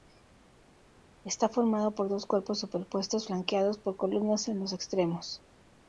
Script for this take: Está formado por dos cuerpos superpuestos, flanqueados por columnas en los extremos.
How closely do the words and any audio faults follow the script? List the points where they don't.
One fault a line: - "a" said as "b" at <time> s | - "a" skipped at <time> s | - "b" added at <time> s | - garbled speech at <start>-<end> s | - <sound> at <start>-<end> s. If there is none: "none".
none